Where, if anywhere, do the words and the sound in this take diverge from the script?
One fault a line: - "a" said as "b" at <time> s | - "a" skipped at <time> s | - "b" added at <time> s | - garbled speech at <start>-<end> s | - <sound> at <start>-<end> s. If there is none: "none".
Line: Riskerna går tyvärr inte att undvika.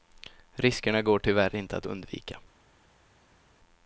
none